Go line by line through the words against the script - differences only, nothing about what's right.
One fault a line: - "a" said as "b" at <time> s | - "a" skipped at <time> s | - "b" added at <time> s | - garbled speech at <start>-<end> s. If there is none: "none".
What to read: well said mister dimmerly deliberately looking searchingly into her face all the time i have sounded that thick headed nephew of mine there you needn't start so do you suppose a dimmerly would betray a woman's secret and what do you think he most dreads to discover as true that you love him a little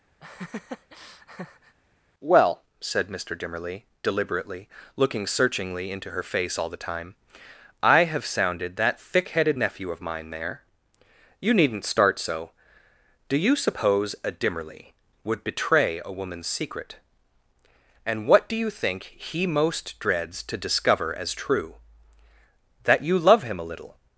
none